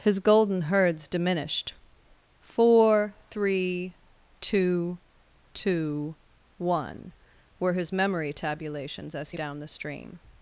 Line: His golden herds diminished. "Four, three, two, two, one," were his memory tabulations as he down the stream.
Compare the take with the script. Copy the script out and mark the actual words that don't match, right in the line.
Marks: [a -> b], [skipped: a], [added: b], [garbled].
His golden herds diminished. "Four, three, two, two, one," were his memory tabulations as he down the stream.